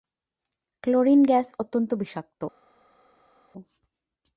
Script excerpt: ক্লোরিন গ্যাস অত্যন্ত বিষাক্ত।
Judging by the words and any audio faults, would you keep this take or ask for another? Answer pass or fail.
pass